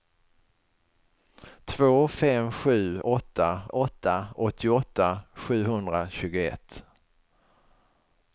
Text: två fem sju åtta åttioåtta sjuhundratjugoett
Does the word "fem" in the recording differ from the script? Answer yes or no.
no